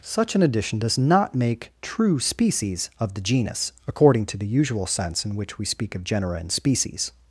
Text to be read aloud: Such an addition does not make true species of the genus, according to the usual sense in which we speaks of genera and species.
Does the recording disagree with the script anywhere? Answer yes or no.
yes